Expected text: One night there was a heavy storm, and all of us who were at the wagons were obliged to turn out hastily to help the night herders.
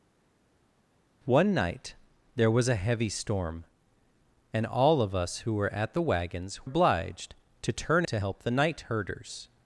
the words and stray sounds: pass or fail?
fail